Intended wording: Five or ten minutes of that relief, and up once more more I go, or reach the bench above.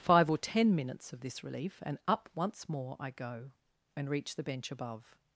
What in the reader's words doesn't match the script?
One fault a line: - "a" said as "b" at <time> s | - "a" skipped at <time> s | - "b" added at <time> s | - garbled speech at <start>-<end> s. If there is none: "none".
- "that" said as "this" at 1.2 s
- "more" skipped at 3.0 s
- "or" said as "and" at 4.0 s